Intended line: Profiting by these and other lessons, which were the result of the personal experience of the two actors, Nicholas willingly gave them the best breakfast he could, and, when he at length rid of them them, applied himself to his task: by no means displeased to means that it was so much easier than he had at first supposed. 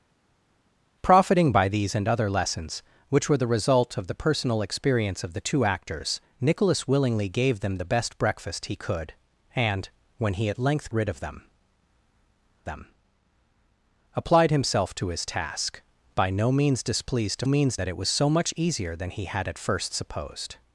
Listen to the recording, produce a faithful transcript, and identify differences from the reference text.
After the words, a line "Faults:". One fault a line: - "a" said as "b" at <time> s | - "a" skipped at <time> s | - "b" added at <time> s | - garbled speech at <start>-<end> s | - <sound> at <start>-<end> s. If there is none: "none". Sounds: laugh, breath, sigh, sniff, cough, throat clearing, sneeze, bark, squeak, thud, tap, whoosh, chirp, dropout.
Profiting by these and other lessons, which were the result of the personal experience of the two actors, Nicholas willingly gave them the best breakfast he could, and, when he at length rid of them them, applied himself to his task: by no means displeased to means that it was so much easier than he had at first supposed.
Faults:
none